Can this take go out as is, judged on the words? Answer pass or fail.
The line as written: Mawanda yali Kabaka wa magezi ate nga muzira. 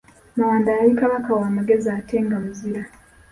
pass